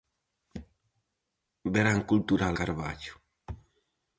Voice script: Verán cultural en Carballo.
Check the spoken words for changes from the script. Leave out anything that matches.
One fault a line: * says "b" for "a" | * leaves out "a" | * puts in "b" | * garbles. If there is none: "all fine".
* leaves out "en"